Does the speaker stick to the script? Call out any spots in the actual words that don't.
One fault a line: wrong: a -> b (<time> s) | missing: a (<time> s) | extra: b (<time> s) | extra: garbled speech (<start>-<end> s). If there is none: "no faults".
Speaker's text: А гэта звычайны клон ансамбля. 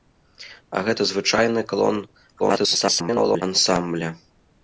extra: garbled speech (2.4-3.4 s)